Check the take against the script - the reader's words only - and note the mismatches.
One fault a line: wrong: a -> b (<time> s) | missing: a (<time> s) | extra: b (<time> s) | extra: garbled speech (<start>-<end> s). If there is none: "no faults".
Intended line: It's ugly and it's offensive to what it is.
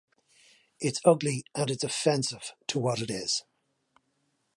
no faults